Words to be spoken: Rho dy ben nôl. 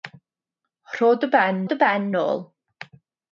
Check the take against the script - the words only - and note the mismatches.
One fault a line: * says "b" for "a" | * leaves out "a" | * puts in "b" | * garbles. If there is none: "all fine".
* puts in "dy ben"